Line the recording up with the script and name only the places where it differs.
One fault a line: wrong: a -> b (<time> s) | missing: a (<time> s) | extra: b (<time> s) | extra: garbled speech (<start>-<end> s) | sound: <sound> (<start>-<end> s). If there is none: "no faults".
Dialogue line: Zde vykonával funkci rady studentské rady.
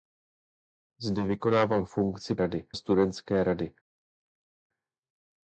no faults